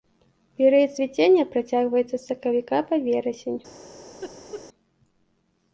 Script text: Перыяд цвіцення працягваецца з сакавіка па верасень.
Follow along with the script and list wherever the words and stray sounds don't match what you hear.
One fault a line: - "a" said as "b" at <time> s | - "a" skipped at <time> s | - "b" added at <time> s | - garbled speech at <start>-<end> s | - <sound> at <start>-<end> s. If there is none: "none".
- laugh at 4.2-4.6 s